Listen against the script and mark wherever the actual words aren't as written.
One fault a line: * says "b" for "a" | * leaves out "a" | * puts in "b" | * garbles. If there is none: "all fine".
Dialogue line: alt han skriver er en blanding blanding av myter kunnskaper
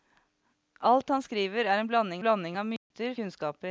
all fine